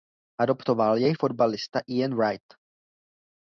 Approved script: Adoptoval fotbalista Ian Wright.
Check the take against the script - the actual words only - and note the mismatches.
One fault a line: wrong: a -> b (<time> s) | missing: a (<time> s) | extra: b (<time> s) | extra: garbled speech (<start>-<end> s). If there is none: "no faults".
extra: jej (1.0 s)